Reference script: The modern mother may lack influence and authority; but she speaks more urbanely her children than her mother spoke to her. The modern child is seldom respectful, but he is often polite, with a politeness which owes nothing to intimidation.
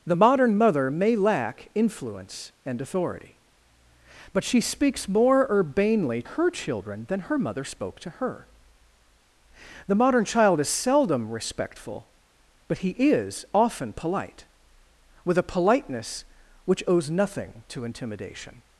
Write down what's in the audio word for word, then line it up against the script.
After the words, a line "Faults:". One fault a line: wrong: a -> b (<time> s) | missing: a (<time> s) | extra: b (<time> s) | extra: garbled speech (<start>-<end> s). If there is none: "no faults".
The modern mother may lack influence and authority; but she speaks more urbanely her children than her mother spoke to her. The modern child is seldom respectful, but he is often polite, with a politeness which owes nothing to intimidation.
Faults:
no faults